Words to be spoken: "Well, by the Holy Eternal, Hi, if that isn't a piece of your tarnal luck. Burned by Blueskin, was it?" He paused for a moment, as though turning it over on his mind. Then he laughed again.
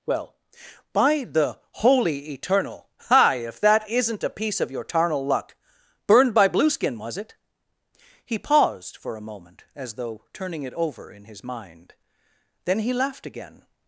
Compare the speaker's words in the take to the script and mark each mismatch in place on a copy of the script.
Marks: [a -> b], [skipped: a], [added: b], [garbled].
"Well, by the Holy Eternal, Hi, if that isn't a piece of your tarnal luck. Burned by Blueskin, was it?" He paused for a moment, as though turning it over [on -> in] his mind. Then he laughed again.